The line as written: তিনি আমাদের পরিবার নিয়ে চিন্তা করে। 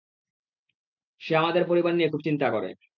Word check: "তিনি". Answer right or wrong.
wrong